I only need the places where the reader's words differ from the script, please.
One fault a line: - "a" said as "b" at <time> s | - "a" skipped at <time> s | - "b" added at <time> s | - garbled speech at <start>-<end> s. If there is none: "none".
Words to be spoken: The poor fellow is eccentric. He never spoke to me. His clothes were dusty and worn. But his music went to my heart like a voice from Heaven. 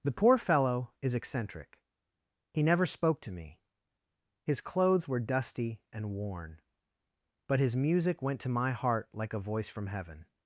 none